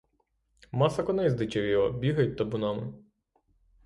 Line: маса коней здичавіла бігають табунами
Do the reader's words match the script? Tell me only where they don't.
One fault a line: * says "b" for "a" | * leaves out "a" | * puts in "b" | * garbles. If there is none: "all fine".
all fine